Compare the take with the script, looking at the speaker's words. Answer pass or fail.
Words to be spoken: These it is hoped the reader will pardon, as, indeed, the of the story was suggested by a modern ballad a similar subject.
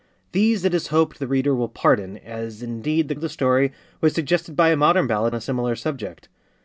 pass